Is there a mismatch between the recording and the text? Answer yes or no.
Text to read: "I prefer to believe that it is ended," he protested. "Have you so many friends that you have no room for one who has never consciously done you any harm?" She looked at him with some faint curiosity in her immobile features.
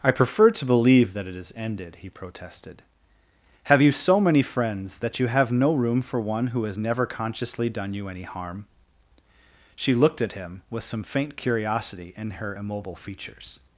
no